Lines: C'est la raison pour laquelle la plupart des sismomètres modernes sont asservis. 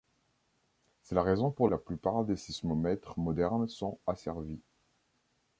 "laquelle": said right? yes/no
no